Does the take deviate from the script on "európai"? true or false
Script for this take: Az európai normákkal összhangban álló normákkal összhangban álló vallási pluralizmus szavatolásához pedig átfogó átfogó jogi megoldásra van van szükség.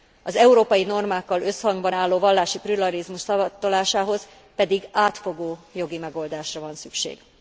false